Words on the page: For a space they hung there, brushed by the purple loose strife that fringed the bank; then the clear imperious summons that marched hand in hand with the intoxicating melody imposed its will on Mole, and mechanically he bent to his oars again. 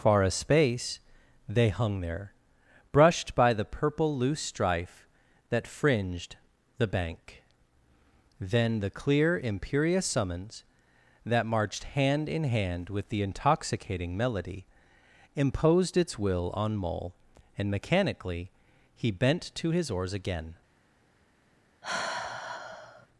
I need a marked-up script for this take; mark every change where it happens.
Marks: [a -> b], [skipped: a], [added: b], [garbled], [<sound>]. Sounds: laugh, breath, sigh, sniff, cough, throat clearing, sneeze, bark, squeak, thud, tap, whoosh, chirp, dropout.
[For -> Far] a space they hung there, brushed by the purple loose strife that fringed the bank; then the clear imperious summons that marched hand in hand with the intoxicating melody imposed its will on Mole, and mechanically he bent to his oars again. [sigh]